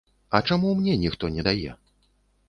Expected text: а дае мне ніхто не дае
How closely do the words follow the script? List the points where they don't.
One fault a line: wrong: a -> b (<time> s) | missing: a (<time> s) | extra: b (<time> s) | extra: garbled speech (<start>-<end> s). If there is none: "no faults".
wrong: дае -> чаму (0.5 s)